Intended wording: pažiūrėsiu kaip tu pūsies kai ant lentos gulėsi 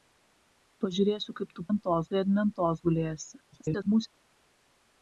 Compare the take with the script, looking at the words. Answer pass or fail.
fail